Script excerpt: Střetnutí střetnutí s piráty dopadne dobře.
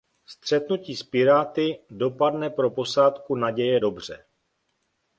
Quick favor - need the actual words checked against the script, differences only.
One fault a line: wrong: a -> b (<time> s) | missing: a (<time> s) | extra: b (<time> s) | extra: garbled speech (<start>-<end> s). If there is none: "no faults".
missing: střetnutí (0.9 s)
extra: pro posádku Naděje (2.5 s)